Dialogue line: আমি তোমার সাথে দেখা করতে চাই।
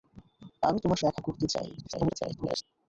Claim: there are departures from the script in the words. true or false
true